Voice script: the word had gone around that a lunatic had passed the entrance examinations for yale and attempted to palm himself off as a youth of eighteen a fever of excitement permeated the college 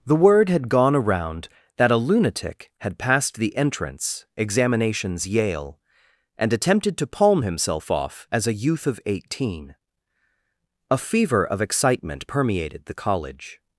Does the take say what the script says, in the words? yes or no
no